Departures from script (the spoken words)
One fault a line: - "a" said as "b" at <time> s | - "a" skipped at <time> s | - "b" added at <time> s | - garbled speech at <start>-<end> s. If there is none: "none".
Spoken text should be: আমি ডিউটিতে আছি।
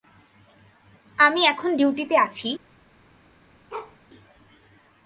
- "এখন" added at 1.4 s